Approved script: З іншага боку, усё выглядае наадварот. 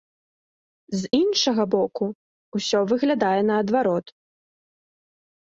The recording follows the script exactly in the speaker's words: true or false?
true